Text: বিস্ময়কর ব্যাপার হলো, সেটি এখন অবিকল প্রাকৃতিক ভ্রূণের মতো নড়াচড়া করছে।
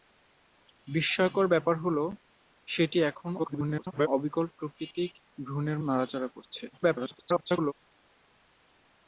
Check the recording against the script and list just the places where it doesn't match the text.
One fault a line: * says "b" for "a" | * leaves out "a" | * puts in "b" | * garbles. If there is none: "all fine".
* garbles
* leaves out "মতো"
* garbles